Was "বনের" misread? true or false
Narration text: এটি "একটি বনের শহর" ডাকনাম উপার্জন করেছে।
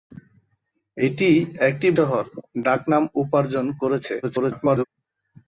true